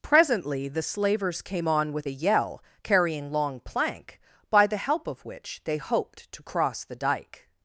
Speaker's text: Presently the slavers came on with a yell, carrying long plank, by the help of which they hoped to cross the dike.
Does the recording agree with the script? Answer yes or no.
yes